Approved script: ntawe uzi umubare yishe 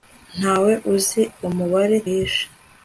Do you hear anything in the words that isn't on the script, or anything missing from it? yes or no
no